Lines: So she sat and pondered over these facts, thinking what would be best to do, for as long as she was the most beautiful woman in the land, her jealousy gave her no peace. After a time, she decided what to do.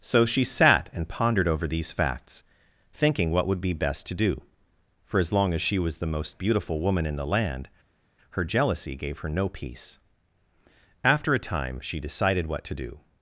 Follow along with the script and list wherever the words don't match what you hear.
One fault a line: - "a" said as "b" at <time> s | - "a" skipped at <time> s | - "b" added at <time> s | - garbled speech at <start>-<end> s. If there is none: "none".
none